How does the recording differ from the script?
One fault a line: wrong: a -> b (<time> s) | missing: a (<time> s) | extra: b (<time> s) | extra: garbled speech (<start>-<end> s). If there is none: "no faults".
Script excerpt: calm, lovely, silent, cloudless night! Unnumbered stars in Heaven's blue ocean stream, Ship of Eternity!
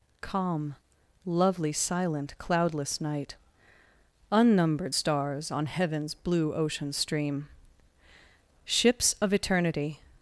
wrong: in -> on (5.5 s)
wrong: Ship -> Ships (8.6 s)